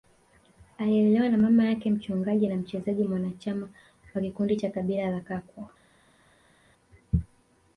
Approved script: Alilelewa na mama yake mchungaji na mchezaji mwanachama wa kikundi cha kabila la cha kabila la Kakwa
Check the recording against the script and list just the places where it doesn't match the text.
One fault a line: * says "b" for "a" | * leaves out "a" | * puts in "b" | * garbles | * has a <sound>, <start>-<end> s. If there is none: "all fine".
* leaves out "cha kabila la"